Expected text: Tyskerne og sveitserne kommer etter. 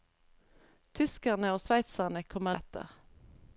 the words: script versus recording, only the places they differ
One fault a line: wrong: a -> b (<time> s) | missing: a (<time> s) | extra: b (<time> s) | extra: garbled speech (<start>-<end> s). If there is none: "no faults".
no faults